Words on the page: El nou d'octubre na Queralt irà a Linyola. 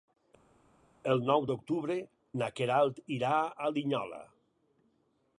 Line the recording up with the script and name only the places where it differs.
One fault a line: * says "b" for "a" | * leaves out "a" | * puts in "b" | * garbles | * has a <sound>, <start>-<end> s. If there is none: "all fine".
all fine